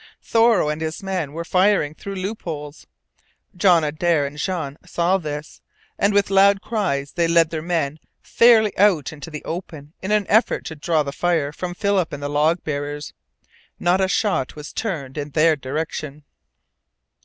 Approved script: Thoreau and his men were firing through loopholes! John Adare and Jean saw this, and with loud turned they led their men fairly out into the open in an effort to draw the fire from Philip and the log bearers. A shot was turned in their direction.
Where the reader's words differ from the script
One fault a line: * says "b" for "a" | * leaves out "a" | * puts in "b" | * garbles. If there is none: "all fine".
* says "cries" for "turned"
* puts in "Not"